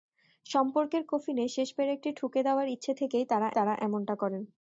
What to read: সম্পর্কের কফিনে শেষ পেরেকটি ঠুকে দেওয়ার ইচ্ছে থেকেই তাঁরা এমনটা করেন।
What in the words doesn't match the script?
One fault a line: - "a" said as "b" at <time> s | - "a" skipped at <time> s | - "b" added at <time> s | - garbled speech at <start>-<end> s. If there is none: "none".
- "তাঁরা" added at 3.6 s